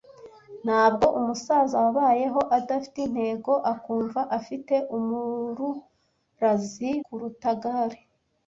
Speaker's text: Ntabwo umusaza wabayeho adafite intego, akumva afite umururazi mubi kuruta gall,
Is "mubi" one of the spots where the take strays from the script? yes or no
yes